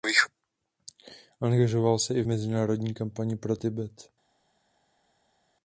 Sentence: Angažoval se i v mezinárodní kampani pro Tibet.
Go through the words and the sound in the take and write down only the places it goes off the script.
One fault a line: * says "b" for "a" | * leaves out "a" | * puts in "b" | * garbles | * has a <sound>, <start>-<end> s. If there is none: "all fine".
all fine